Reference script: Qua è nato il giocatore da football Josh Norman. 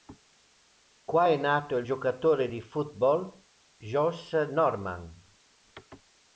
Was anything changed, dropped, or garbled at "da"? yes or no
yes